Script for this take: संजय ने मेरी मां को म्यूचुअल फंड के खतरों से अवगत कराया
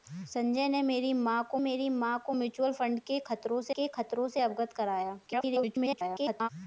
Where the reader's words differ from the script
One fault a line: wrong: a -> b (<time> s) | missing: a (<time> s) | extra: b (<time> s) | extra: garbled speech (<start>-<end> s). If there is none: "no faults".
extra: मेरी मां को (1.6 s)
extra: के खतरों से (3.7 s)
extra: garbled speech (5.3-6.5 s)